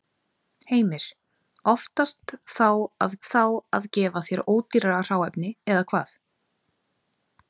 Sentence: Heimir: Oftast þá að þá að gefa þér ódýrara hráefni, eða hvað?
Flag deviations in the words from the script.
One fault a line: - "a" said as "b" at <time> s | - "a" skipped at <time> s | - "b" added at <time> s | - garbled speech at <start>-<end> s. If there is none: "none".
none